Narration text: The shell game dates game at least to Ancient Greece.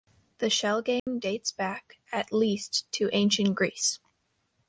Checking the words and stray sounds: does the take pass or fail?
fail